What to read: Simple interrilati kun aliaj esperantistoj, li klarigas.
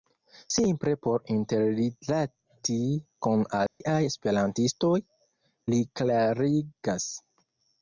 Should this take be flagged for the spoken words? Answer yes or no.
yes